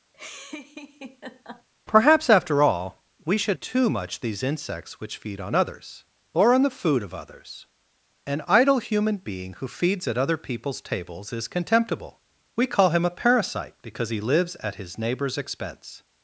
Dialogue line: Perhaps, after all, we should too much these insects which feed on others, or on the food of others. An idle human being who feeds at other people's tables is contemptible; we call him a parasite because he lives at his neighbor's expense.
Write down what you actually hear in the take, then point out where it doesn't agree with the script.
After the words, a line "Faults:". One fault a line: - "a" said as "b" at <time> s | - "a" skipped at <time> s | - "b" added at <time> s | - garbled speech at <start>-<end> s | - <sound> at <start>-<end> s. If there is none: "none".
Perhaps, after all, we should too much these insects which feed on others, or on the food of others. An idle human being who feeds at other people's tables is contemptible; we call him a parasite because he lives at his neighbor's expense.
Faults:
- laugh at 0.1-1.7 s